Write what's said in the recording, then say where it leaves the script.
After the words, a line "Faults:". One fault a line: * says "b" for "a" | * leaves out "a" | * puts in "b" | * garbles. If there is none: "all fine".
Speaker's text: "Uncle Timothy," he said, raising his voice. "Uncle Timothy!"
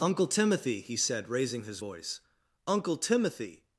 "Uncle Timothy," he said, raising his voice. "Uncle Timothy!"
Faults:
all fine